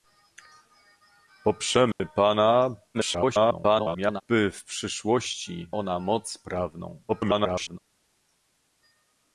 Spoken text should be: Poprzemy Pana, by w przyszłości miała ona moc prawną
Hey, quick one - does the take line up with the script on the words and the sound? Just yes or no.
no